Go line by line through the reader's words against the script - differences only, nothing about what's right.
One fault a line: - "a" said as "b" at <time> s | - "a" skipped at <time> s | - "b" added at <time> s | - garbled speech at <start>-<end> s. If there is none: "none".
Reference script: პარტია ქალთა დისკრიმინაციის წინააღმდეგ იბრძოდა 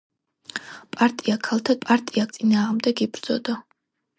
- "დისკრიმინაციის" said as "პარტია" at 1.8 s